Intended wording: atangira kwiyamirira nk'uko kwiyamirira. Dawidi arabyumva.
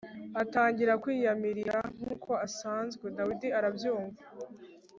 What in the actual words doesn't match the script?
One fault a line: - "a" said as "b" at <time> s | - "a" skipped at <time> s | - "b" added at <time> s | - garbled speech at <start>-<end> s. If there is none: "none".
- "kwiyamirira" said as "asanzwe" at 2.5 s